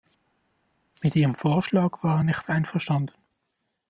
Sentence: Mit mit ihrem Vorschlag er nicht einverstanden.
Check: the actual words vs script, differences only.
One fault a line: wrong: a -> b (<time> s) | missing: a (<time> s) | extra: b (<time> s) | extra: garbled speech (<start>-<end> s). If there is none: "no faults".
missing: mit (1.1 s)
extra: war (2.0 s)